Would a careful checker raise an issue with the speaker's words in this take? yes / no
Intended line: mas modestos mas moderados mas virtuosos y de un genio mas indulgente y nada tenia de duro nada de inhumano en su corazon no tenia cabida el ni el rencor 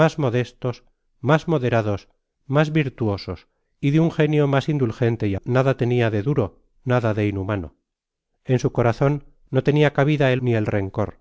no